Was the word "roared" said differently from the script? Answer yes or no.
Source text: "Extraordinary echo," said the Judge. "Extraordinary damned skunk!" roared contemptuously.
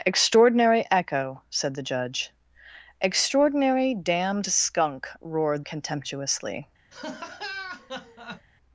no